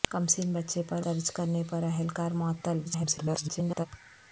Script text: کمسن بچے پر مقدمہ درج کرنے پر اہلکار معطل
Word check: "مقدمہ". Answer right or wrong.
wrong